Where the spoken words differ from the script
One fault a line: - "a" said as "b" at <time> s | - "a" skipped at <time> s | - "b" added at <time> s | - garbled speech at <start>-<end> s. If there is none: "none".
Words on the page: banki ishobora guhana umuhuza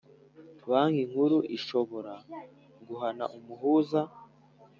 - "nkuru" added at 1.1 s